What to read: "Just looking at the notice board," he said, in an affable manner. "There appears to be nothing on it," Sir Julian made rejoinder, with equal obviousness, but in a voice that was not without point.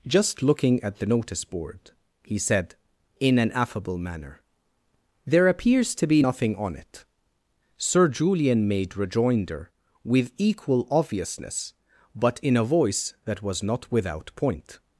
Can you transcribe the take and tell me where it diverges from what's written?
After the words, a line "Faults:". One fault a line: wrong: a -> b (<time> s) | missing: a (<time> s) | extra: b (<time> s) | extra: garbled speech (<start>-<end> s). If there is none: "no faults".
"Just looking at the notice board," he said, in an affable manner. "There appears to be nothing on it," Sir Julian made rejoinder, with equal obviousness, but in a voice that was not without point.
Faults:
no faults